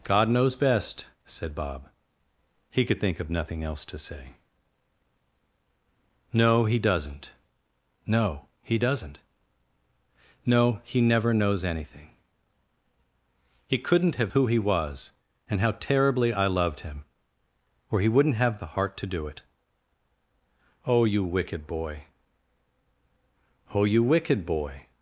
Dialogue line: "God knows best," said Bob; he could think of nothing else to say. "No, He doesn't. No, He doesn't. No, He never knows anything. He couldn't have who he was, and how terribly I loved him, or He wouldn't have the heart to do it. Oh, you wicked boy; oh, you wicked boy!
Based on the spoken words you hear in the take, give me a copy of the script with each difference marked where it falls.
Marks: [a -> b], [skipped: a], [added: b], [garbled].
"God knows best," said Bob; he could think of nothing else to say. "No, He doesn't. No, He doesn't. No, He never knows anything. He couldn't have who he was, and how terribly I loved him, or He wouldn't have the heart to do it. Oh, you wicked boy; oh, you wicked boy!